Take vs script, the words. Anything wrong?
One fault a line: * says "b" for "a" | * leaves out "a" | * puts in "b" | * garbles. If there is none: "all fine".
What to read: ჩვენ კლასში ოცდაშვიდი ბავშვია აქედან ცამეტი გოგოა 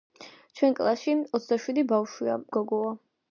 * leaves out "აქედან ცამეტი"